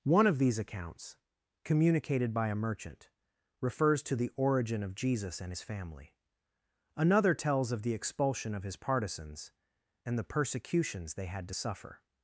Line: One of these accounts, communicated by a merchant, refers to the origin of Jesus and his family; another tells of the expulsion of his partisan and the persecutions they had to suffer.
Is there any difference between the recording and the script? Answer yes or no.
yes